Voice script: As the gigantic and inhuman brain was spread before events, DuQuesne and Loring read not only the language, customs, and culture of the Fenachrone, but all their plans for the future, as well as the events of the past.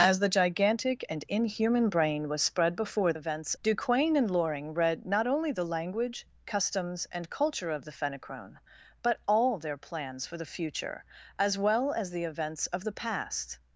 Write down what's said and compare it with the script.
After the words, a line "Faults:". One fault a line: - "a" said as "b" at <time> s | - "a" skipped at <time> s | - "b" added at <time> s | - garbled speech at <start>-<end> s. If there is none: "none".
As the gigantic and inhuman brain was spread before events, DuQuesne and Loring read not only the language, customs, and culture of the Fenachrone, but all their plans for the future, as well as the events of the past.
Faults:
none